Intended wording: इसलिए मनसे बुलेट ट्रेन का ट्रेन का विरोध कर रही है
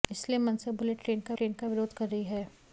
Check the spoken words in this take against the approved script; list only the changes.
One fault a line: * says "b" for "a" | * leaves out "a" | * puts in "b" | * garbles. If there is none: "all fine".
all fine